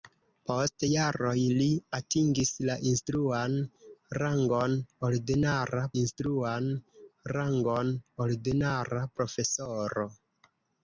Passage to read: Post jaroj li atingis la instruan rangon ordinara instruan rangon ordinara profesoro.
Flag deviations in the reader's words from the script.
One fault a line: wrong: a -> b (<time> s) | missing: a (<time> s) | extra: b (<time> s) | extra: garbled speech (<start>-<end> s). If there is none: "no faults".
no faults